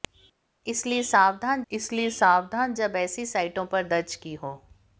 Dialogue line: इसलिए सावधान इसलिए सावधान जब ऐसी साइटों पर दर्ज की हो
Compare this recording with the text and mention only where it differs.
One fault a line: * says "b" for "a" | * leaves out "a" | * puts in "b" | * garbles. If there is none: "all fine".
all fine